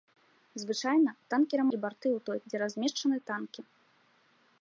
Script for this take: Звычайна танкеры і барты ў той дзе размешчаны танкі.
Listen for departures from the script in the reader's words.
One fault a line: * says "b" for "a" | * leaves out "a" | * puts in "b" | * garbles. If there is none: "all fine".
all fine